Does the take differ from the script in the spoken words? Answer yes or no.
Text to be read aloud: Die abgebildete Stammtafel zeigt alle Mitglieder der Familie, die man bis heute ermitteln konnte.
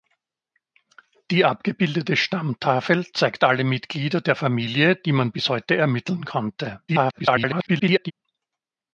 yes